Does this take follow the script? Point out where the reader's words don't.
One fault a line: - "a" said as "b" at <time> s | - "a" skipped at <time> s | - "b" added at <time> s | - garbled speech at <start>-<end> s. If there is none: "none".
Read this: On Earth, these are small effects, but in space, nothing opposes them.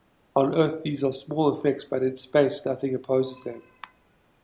none